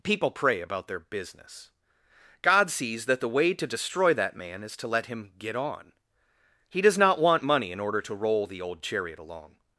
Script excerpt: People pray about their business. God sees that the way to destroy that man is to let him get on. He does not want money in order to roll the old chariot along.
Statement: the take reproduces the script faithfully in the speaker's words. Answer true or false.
true